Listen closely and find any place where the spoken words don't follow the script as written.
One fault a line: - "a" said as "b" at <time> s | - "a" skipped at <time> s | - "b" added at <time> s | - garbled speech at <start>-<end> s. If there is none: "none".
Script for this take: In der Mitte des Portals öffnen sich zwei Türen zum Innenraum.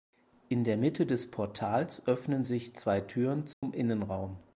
none